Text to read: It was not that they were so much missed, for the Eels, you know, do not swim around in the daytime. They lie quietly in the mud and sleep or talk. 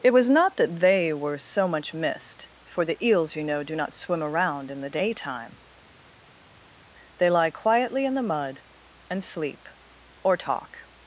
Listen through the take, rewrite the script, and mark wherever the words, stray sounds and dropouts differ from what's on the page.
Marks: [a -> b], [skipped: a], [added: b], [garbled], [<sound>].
It was not that they were so much missed, for the Eels, you know, do not swim around in the daytime. They lie quietly in the mud and sleep or talk.